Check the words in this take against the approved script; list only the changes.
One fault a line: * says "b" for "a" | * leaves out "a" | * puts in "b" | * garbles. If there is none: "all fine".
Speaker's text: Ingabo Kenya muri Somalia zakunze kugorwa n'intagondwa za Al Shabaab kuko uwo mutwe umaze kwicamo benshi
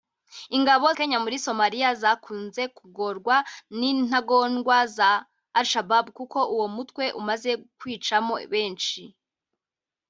all fine